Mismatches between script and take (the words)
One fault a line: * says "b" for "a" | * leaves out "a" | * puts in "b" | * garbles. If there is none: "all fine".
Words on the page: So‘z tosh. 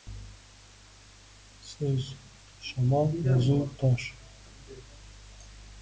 * puts in "shamol yozuv"